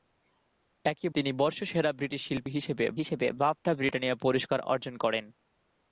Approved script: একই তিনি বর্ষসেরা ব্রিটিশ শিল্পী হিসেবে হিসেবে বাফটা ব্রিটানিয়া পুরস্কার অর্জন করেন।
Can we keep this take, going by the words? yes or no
yes